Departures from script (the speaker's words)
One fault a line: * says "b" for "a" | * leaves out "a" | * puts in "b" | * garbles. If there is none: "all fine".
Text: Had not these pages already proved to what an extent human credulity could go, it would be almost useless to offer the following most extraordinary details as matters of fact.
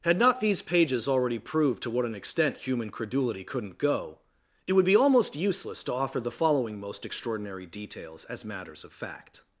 * says "couldn't" for "could"